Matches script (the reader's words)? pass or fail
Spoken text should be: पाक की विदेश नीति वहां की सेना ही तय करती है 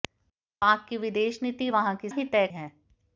fail